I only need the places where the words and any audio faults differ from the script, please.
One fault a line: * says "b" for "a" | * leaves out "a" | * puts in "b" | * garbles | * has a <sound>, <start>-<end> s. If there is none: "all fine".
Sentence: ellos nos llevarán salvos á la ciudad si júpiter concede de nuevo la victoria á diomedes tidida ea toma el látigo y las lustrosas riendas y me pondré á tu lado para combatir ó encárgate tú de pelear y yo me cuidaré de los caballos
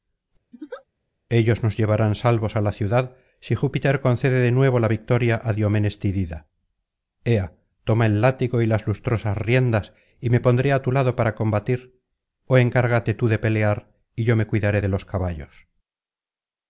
* has a laugh, 0.5-0.8 s